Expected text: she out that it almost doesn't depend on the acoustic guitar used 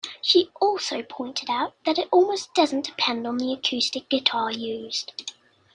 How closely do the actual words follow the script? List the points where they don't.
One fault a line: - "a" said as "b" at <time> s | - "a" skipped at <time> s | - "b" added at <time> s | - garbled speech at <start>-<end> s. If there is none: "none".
- "also pointed" added at 0.6 s